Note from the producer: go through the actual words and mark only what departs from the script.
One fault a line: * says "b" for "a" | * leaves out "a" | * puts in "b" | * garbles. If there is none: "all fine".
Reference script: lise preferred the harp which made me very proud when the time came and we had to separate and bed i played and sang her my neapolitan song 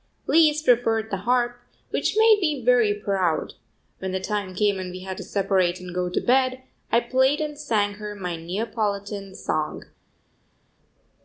* puts in "go to"